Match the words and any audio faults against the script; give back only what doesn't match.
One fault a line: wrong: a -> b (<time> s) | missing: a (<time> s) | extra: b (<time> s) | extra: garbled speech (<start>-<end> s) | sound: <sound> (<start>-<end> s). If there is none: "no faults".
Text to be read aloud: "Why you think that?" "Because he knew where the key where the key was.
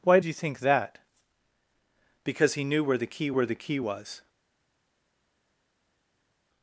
no faults